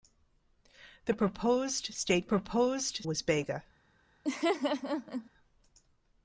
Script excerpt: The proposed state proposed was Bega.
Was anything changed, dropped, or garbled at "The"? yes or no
no